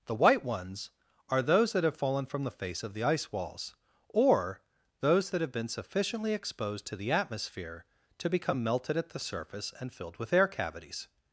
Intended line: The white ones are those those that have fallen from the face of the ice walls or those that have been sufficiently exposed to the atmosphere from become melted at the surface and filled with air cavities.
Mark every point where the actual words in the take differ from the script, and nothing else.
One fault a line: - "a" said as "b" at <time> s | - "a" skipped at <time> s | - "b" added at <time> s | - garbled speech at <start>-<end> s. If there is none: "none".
- "those" skipped at 1.7 s
- "from" said as "to" at 8.2 s